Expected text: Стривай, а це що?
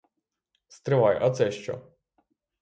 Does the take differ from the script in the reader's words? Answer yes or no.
no